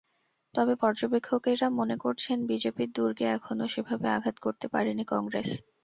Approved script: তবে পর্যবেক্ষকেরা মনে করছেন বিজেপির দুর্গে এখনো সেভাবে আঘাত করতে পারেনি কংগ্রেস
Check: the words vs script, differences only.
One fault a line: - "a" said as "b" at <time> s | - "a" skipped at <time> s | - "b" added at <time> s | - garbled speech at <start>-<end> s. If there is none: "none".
none